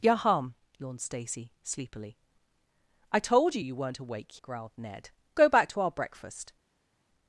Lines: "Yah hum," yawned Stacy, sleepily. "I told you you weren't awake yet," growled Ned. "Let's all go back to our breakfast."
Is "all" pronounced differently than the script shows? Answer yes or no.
yes